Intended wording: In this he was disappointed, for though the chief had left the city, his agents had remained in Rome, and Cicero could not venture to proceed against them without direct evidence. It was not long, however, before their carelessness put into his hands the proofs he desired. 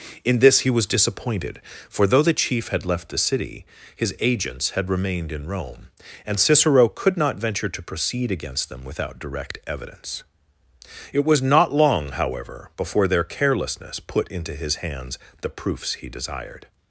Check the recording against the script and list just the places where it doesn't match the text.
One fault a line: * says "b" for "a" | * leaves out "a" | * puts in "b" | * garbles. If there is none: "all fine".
all fine